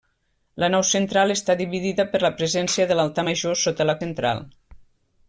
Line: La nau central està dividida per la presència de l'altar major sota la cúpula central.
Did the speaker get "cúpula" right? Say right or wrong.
wrong